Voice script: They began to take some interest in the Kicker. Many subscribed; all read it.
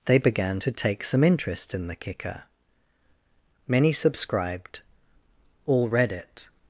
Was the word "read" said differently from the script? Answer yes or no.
no